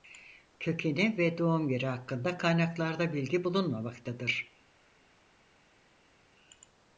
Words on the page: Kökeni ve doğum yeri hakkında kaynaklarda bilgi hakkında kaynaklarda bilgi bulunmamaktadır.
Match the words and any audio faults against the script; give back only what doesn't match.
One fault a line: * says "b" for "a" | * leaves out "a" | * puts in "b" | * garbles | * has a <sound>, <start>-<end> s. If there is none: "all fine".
* leaves out "hakkında kaynaklarda bilgi"